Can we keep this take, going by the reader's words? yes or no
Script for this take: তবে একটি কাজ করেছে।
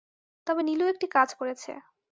no